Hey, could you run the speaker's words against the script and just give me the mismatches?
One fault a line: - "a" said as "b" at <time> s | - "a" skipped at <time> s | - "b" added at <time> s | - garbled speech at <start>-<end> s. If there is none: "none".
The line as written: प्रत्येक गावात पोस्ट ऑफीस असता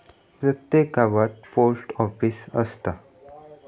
none